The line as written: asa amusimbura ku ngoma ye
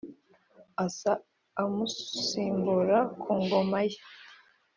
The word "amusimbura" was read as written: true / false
true